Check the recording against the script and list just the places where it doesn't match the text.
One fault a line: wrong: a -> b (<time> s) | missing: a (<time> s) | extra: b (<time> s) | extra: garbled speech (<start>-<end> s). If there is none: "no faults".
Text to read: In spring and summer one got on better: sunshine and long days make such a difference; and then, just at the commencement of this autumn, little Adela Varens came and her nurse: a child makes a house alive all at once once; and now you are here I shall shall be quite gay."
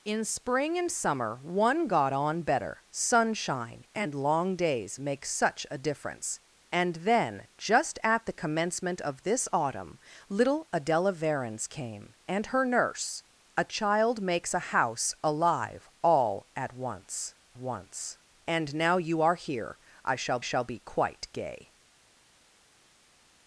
no faults